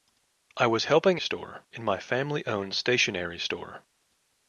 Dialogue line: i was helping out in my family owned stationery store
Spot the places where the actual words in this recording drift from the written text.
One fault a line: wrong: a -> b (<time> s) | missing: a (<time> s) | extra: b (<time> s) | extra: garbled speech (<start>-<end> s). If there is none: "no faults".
wrong: out -> store (1.2 s)